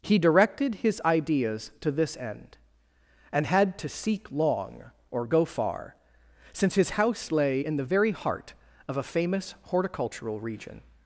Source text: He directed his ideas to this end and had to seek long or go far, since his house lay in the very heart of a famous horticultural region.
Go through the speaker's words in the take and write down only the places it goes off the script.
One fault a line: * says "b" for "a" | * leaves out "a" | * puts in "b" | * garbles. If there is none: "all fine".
all fine